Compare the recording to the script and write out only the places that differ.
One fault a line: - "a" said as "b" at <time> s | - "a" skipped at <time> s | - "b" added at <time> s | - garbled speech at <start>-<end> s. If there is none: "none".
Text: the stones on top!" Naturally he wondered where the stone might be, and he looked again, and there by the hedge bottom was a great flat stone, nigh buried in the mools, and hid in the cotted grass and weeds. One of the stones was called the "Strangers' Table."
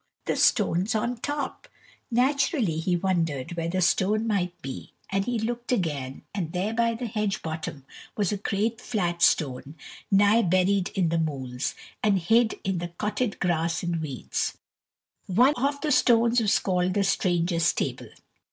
none